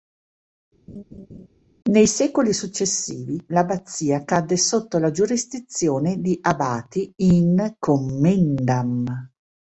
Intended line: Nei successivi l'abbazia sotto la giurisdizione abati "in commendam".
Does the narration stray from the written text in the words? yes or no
yes